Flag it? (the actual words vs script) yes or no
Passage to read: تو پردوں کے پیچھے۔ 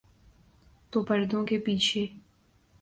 no